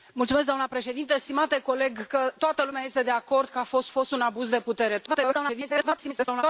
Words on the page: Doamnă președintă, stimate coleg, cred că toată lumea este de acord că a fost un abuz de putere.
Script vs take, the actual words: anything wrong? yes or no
yes